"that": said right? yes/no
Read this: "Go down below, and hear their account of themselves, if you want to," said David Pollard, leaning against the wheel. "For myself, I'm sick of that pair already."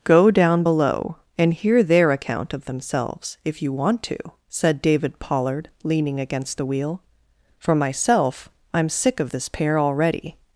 no